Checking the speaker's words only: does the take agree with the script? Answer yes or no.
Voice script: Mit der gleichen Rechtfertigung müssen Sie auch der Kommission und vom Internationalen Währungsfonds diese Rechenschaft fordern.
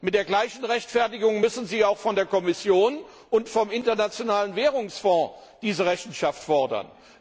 no